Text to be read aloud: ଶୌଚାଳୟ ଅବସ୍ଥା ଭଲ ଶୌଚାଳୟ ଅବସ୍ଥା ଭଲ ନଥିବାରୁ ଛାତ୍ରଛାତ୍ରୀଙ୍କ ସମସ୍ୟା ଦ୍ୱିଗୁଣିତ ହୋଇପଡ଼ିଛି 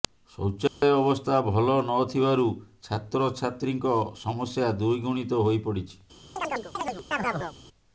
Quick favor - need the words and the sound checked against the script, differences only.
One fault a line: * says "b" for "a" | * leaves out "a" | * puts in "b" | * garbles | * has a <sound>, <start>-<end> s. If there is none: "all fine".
* has a dropout, 0.7-0.8 s
* leaves out "ଶୌଚାଳୟ ଅବସ୍ଥା ଭଲ"
* has a chirp, 6.4-7.6 s